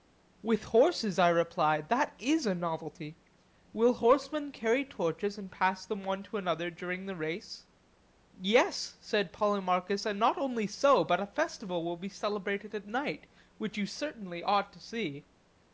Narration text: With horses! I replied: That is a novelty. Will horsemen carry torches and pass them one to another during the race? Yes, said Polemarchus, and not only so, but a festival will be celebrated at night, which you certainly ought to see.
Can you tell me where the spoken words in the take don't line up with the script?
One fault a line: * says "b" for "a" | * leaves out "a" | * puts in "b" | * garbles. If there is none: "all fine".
all fine